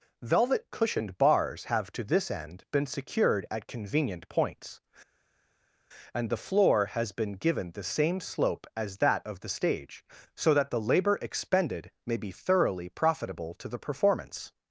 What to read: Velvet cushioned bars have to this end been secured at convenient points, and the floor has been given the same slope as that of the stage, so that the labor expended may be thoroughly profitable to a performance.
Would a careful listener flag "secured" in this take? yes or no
no